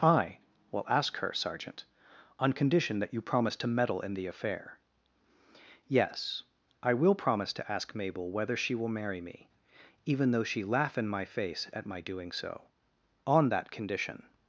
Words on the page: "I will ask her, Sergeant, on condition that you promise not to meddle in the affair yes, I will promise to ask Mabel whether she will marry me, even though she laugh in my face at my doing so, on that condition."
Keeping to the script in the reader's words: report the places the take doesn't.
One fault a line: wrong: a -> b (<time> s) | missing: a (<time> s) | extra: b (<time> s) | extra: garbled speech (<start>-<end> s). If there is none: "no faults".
missing: not (3.5 s)